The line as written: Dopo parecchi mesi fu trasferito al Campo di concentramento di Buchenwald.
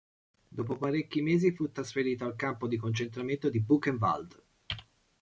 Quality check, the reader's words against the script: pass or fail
pass